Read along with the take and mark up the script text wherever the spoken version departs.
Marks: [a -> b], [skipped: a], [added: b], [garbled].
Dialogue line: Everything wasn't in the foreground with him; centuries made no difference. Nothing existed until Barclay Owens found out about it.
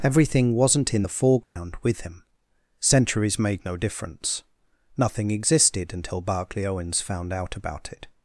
Everything wasn't in the foreground with him; centuries made no difference. Nothing existed until Barclay Owens found out about it.